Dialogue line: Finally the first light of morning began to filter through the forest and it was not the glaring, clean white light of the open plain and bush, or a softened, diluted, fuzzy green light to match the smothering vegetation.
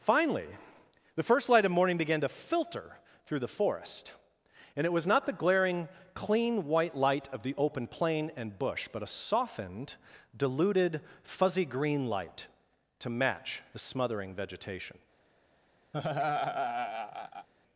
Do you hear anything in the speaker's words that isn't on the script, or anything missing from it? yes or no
yes